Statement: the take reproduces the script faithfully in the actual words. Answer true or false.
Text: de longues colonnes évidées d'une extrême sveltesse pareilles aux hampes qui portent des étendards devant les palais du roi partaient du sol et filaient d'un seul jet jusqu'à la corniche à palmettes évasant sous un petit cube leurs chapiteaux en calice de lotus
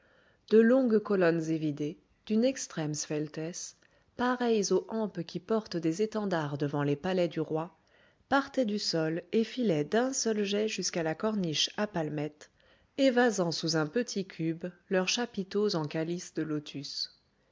true